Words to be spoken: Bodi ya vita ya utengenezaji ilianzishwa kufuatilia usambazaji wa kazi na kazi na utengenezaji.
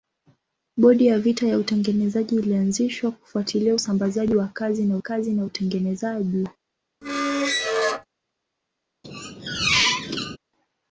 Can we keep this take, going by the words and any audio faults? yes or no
no